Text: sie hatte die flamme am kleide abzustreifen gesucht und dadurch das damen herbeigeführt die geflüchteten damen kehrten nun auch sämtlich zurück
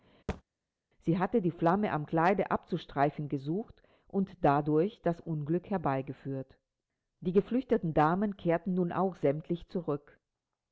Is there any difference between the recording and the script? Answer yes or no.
yes